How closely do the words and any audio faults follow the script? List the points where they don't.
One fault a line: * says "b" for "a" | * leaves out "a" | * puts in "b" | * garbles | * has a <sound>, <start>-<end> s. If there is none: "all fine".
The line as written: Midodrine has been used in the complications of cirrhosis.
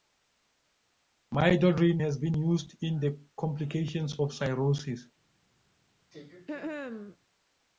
* has a throat clearing, 6.1-7.2 s